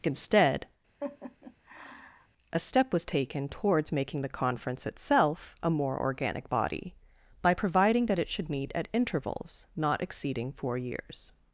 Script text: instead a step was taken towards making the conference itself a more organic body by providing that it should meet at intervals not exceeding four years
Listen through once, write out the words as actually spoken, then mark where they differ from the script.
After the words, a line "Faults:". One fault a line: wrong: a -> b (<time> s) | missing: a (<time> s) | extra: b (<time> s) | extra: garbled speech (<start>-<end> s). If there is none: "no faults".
instead a step was taken towards making the conference itself a more organic body by providing that it should meet at intervals not exceeding four years
Faults:
no faults